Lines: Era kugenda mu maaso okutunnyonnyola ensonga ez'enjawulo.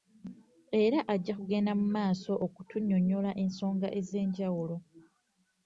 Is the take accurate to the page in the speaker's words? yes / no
no